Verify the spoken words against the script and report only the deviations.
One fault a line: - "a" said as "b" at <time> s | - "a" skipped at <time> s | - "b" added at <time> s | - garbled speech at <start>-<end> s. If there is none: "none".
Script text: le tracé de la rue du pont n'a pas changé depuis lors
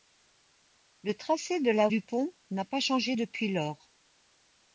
- "rue" skipped at 1.9 s